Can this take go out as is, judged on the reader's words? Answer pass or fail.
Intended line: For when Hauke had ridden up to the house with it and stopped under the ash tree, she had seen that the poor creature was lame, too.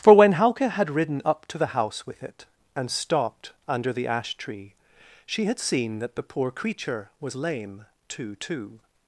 fail